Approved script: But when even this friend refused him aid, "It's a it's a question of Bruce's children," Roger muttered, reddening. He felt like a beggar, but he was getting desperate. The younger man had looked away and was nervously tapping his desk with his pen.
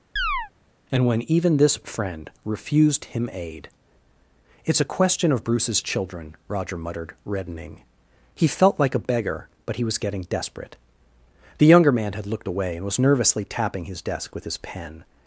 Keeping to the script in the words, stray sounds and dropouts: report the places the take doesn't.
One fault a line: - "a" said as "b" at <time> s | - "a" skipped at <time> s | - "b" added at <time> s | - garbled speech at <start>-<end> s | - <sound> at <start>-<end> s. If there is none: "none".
- chirp at 0.2-0.5 s
- "But" said as "And" at 0.9 s
- "it's a" skipped at 5.0 s